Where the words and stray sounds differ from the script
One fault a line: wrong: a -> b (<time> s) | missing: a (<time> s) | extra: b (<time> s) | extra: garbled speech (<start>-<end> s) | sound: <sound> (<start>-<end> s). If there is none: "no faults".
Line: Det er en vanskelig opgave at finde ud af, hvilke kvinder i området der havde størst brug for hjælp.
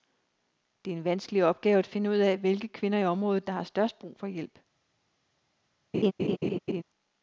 wrong: havde -> har (3.5 s)
sound: laugh (5.9-6.8 s)